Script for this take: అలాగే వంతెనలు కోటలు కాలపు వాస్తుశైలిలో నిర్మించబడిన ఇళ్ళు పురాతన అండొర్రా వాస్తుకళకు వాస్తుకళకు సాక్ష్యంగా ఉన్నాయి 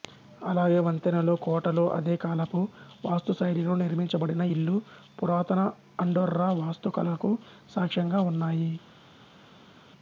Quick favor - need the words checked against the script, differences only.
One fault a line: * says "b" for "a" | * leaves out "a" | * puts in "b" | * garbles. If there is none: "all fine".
* puts in "అదే"
* leaves out "వాస్తుకళకు"